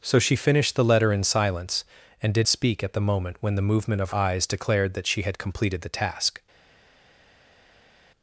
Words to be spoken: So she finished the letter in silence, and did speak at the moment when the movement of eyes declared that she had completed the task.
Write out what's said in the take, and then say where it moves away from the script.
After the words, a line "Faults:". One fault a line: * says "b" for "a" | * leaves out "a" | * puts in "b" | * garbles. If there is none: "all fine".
So she finished the letter in silence, and did speak at the moment when the movement of eyes declared that she had completed the task.
Faults:
all fine